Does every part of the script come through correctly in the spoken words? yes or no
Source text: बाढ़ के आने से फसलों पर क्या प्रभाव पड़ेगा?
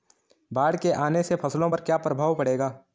yes